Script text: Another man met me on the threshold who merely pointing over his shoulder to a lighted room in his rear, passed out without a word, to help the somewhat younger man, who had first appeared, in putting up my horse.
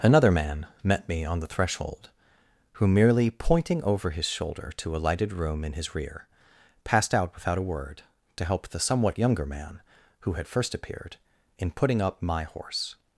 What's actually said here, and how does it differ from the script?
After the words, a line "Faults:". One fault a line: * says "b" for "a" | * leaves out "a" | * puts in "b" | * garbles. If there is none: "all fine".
Another man met me on the threshold who merely pointing over his shoulder to a lighted room in his rear, passed out without a word, to help the somewhat younger man, who had first appeared, in putting up my horse.
Faults:
all fine